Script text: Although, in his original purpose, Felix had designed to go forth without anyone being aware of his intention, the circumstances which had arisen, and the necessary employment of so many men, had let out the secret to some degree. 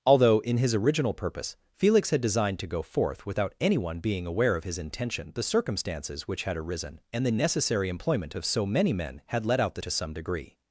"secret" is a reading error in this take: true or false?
true